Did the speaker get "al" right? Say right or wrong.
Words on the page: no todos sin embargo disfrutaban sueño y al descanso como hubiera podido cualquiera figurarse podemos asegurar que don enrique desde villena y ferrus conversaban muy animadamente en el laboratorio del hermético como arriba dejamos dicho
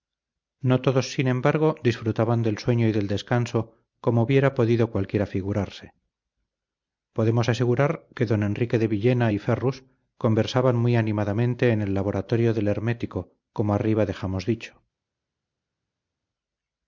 wrong